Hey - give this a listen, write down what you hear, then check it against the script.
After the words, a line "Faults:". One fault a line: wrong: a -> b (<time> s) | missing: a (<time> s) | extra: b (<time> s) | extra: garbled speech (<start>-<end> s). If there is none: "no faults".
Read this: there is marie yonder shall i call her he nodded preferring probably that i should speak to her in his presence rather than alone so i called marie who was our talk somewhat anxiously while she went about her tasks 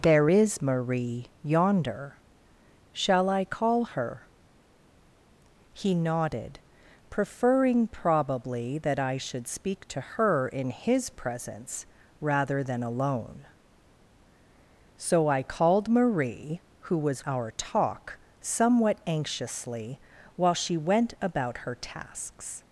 there is marie yonder shall i call her he nodded preferring probably that i should speak to her in his presence rather than alone so i called marie who was our talk somewhat anxiously while she went about her tasks
Faults:
no faults